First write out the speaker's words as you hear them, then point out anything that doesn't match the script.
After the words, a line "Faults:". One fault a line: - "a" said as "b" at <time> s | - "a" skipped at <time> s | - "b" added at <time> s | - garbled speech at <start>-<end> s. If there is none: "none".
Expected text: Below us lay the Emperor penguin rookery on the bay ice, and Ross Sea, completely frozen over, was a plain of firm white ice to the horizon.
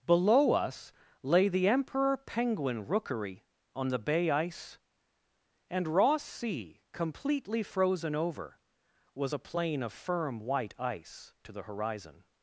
Below us lay the Emperor penguin rookery on the bay ice, and Ross Sea, completely frozen over, was a plain of firm white ice to the horizon.
Faults:
none